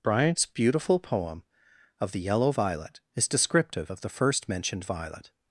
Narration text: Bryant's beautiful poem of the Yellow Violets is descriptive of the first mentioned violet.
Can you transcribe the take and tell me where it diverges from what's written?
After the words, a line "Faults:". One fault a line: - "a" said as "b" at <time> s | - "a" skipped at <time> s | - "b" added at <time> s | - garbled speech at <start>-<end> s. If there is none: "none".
Bryant's beautiful poem of the Yellow Violet is descriptive of the first mentioned violet.
Faults:
- "Violets" said as "Violet" at 2.5 s